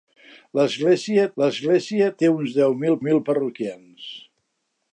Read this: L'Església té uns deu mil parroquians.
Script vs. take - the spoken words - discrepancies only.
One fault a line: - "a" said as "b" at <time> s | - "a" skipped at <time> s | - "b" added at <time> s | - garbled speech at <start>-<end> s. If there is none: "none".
- "l'església" added at 1.4 s
- "mil" added at 3.1 s